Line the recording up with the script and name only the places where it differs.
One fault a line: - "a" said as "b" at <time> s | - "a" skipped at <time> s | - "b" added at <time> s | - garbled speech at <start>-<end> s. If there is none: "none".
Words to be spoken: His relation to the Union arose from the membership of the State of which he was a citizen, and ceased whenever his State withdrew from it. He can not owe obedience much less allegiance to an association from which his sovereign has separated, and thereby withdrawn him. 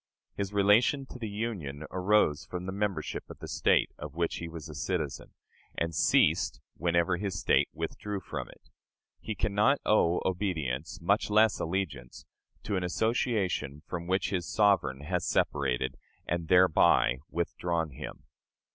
none